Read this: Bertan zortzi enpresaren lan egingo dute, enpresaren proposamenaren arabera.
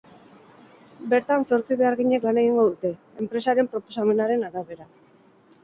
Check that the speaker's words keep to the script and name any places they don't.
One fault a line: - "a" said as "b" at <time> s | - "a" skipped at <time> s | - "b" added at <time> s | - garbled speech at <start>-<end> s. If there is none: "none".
- "enpresaren" said as "beharginek" at 1.8 s